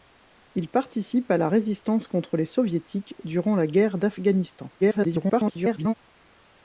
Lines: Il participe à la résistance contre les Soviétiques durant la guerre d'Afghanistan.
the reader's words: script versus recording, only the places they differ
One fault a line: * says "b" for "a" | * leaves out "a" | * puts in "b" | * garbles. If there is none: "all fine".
* garbles